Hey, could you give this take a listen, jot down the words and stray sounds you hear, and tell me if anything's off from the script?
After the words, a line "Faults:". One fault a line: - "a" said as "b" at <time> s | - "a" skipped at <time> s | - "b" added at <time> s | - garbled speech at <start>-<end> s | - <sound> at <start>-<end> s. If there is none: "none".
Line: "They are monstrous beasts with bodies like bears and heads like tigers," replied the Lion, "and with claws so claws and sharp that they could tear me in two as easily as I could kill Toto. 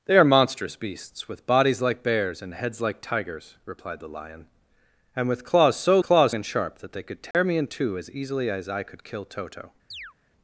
"They are monstrous beasts with bodies like bears and heads like tigers," replied the Lion, "and with claws so claws and sharp that they could tear me in two as easily as I could kill Toto.
Faults:
- dropout at 7.3-7.3 s
- chirp at 9.9-10.1 s